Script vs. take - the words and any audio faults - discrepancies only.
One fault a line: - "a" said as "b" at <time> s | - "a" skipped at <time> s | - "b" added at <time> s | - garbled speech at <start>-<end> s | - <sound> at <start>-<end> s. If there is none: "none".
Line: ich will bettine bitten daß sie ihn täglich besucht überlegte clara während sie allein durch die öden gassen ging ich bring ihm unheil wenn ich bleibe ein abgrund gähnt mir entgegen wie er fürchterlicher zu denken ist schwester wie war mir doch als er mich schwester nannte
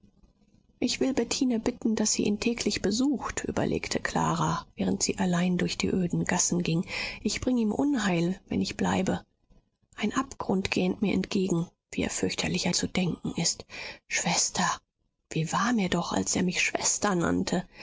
none